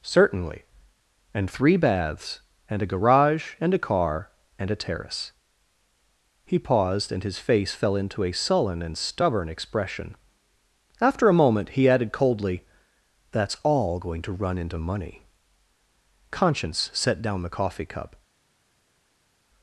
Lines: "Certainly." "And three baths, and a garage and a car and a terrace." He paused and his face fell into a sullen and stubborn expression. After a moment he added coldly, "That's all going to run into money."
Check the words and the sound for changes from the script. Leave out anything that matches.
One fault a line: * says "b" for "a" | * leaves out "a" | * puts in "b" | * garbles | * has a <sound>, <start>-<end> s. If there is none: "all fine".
* puts in "Conscience set down the coffee cup"